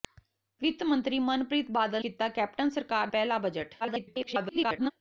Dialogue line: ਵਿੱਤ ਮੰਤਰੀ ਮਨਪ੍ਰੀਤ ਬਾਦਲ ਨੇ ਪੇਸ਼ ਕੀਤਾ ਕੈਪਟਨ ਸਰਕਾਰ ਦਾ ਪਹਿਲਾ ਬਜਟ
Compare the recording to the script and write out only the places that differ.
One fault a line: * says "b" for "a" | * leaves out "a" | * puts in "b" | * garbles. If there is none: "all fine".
* leaves out "ਨੇ ਪੇਸ਼"
* leaves out "ਦਾ"
* garbles